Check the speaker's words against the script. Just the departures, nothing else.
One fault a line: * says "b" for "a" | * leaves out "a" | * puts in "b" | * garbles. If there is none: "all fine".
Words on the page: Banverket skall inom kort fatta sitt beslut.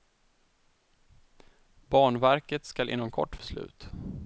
* leaves out "fatta sitt"